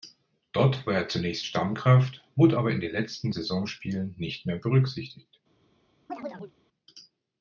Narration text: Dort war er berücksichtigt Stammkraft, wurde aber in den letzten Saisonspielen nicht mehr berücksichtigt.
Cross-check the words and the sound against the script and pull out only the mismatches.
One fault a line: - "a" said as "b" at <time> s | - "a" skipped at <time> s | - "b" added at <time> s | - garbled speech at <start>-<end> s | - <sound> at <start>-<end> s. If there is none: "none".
- "berücksichtigt" said as "zunächst" at 1.1 s
- chirp at 6.1-6.5 s